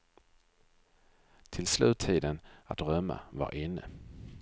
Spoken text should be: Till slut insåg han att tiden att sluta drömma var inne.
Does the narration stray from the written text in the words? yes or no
yes